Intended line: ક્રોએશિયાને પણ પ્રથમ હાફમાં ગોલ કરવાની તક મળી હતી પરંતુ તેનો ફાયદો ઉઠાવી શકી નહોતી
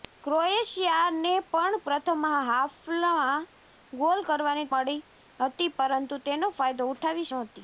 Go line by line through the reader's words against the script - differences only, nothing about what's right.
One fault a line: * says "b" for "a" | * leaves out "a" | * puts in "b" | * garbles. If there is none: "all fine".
* leaves out "તક"
* leaves out "શકી"